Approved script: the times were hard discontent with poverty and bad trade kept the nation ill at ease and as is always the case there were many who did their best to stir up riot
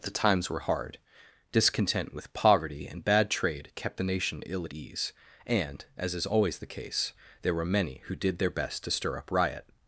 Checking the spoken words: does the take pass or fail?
pass